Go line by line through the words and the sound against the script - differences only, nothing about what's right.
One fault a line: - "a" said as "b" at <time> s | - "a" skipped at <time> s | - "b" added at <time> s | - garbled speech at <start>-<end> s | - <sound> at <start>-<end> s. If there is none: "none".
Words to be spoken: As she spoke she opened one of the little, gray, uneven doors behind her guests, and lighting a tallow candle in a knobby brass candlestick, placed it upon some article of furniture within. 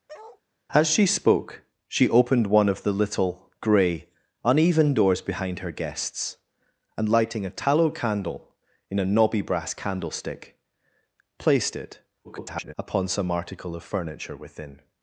- bark at 0.1-0.4 s
- garbled speech at 12.2-12.7 s